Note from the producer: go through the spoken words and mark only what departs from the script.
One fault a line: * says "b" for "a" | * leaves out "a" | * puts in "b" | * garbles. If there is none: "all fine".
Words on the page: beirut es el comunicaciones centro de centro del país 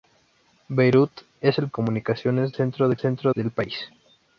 all fine